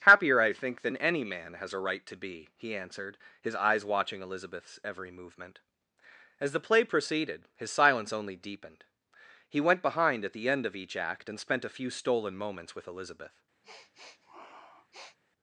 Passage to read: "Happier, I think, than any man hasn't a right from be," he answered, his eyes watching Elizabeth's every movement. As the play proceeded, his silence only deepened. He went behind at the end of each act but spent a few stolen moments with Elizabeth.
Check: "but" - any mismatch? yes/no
yes